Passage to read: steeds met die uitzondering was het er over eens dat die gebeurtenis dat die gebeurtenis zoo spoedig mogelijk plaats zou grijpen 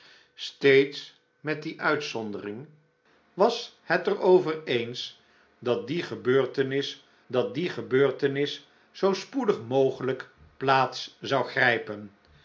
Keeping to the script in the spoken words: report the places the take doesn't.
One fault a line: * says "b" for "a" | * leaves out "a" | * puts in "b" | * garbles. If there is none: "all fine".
all fine